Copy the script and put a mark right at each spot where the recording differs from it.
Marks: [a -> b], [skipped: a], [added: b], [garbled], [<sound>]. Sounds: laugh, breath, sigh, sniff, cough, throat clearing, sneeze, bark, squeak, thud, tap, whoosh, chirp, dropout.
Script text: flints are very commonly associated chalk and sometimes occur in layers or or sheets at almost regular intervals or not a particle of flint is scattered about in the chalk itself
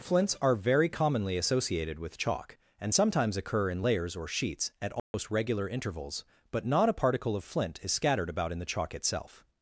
flints are very commonly associated [added: with] chalk and sometimes occur in layers or [skipped: or] sheets at almost [dropout] regular intervals [or -> but] not a particle of flint is scattered about in the chalk itself